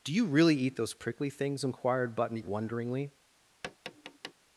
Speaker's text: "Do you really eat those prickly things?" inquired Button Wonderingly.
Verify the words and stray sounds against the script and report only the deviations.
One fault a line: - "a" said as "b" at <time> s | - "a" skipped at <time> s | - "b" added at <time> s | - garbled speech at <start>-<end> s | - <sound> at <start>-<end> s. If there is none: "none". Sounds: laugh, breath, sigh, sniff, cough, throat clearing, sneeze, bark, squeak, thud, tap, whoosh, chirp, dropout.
- tap at 3.6-4.3 s